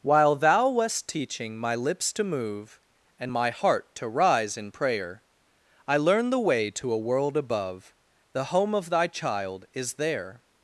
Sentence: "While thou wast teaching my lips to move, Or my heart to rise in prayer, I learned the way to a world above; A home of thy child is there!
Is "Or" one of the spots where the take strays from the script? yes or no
yes